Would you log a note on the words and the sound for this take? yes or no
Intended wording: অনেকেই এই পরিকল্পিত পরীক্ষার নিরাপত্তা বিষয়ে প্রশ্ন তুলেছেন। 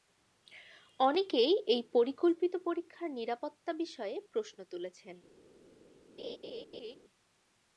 yes